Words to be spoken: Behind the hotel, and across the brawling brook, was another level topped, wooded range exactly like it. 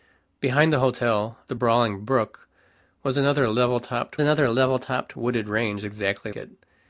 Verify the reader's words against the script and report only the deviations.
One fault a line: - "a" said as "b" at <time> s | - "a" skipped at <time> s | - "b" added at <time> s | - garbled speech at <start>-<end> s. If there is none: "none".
- "and across" skipped at 1.4 s
- "another level topped" added at 4.2 s
- "like" skipped at 6.3 s